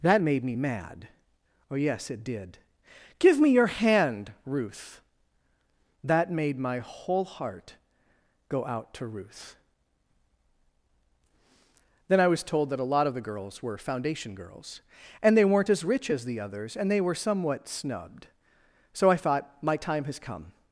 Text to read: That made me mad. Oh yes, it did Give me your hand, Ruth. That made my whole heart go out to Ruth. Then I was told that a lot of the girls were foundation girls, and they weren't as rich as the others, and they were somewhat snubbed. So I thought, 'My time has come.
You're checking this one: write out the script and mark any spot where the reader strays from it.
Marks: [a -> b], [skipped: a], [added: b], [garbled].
That made me mad. Oh yes, it did Give me your hand, Ruth. That made my whole heart go out to Ruth. Then I was told that a lot of the girls were foundation girls, and they weren't as rich as the others, and they were somewhat snubbed. So I thought, 'My time has come.